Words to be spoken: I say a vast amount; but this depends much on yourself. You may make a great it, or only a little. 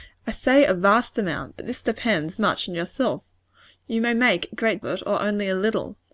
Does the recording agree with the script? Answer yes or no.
yes